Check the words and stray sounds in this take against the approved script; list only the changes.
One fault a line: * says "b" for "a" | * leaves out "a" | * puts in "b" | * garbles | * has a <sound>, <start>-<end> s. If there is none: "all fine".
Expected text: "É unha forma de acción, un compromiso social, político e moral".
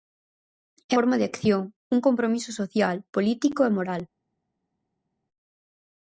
* leaves out "unha"